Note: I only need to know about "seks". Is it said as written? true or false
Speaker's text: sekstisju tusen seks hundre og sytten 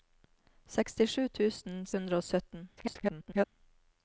false